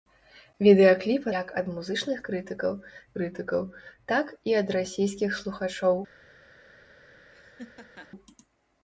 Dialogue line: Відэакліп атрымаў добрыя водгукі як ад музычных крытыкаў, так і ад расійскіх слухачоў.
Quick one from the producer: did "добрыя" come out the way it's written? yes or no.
no